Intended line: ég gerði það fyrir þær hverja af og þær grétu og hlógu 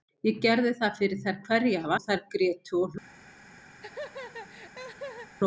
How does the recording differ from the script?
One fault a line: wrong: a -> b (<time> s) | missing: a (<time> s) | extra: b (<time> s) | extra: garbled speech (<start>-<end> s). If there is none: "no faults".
no faults